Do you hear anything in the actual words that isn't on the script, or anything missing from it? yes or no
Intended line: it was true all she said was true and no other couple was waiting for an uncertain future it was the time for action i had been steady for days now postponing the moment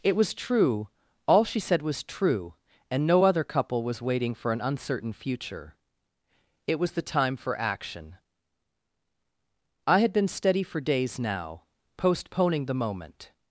no